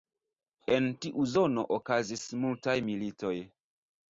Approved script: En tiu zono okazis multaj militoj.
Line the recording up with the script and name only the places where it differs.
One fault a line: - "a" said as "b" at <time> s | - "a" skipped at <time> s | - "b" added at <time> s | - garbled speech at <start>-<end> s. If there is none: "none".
none